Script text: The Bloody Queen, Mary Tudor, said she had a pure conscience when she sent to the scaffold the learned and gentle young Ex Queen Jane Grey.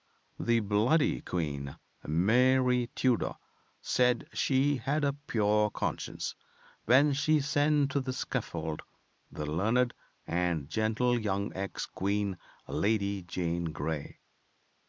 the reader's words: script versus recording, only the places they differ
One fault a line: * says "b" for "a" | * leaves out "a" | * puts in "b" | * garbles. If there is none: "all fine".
* puts in "Lady"